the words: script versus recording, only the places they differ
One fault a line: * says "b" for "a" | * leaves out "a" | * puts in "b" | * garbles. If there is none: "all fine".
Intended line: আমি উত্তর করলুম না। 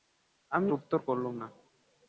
all fine